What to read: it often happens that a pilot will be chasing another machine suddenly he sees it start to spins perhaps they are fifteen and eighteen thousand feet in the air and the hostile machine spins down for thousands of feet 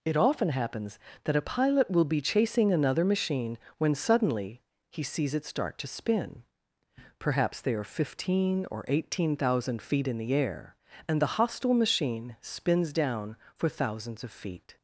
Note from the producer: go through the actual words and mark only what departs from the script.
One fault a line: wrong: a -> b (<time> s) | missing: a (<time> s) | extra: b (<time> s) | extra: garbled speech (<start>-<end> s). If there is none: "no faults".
extra: when (3.8 s)
wrong: spins -> spin (5.9 s)
wrong: and -> or (8.7 s)